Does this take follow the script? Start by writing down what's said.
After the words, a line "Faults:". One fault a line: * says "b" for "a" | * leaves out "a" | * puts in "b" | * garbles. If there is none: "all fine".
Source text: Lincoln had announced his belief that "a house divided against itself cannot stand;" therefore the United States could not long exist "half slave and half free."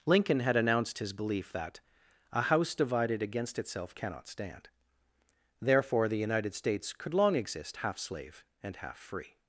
Lincoln had announced his belief that "a house divided against itself cannot stand;" therefore the United States could long exist "half slave and half free."
Faults:
* leaves out "not"